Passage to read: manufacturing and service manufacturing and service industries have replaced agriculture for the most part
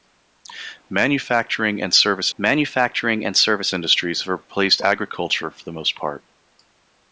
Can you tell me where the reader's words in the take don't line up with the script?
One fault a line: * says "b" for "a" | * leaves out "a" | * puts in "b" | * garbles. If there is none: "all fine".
all fine